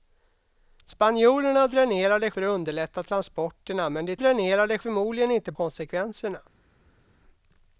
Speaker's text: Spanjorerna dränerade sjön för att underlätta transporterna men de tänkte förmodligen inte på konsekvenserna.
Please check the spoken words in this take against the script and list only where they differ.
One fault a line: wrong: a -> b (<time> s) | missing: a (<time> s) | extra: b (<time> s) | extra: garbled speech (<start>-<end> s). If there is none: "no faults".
missing: sjön (2.3 s)
wrong: tänkte -> dränerade (4.1 s)
missing: på (5.5 s)